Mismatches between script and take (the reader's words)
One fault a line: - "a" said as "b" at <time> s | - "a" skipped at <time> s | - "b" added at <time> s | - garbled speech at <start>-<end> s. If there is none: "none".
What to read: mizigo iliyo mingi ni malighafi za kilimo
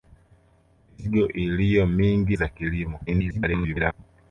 - "ni malighafi" skipped at 2.4 s
- garbled speech at 3.1-3.9 s